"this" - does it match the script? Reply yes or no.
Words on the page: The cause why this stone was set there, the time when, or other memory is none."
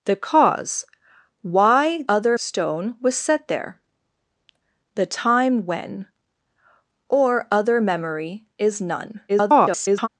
no